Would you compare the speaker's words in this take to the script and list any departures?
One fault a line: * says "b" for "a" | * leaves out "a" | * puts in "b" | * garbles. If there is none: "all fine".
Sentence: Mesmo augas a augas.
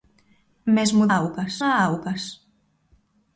all fine